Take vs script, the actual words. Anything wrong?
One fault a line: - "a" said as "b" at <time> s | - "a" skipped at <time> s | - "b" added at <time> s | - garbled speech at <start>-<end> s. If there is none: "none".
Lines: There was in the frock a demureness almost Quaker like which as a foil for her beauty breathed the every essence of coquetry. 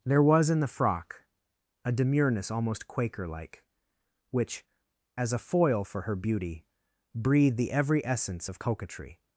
none